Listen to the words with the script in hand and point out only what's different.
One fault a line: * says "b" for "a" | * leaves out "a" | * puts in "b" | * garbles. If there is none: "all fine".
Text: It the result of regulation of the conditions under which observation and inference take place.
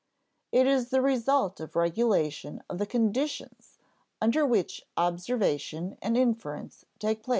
* puts in "is"